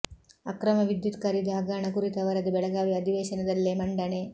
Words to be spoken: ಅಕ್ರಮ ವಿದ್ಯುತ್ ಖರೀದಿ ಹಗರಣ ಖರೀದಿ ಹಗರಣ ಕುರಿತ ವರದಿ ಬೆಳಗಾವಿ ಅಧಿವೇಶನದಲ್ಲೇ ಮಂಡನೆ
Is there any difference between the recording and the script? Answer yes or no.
yes